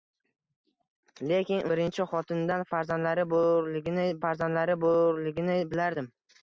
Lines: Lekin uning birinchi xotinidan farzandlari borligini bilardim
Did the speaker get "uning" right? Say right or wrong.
wrong